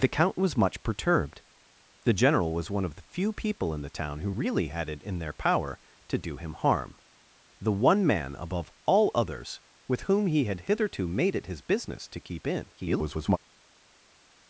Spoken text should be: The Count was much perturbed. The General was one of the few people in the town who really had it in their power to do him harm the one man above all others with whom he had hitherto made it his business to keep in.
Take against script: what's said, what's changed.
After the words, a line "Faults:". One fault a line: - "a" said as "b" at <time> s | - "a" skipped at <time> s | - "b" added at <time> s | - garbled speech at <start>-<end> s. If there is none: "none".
The Count was much perturbed. The General was one of the few people in the town who really had it in their power to do him harm the one man above all others with whom he had hitherto made it his business to keep in. [garbled]
Faults:
- garbled speech at 12.8-13.4 s